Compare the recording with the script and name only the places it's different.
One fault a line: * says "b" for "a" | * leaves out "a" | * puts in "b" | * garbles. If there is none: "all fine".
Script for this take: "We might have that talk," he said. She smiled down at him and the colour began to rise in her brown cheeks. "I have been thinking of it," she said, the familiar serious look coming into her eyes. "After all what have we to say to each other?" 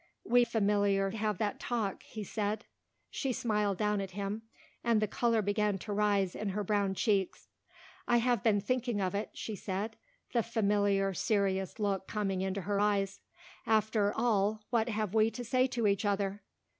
* says "familiar" for "might"